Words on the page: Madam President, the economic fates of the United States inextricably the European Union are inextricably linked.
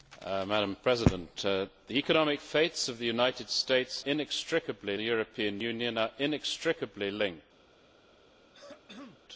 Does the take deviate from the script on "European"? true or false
false